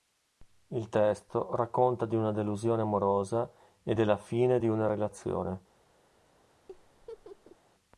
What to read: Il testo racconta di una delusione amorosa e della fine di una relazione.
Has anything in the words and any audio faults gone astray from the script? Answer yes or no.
yes